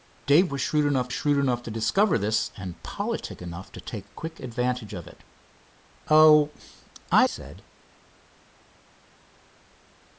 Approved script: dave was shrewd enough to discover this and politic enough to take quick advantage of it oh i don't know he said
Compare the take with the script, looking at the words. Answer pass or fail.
fail